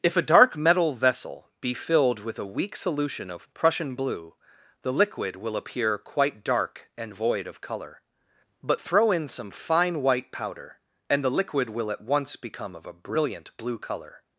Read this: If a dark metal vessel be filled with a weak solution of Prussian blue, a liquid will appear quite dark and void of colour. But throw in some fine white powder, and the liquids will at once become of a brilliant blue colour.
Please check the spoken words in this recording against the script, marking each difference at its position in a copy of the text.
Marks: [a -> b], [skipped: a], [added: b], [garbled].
If a dark metal vessel be filled with a weak solution of Prussian blue, [a -> the] liquid will appear quite dark and void of colour. But throw in some fine white powder, and the [liquids -> liquid] will at once become of a brilliant blue colour.